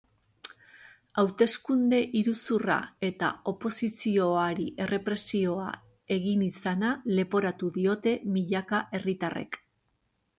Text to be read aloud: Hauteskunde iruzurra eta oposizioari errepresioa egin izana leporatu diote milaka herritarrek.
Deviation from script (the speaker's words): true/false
false